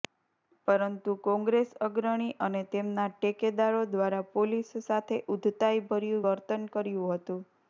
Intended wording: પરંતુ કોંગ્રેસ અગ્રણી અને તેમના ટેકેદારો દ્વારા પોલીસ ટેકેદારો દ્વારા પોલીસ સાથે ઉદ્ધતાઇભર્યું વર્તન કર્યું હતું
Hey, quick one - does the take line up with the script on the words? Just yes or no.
no